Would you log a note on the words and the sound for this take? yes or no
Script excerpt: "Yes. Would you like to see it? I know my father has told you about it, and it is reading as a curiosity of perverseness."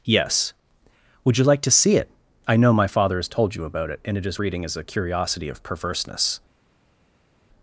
no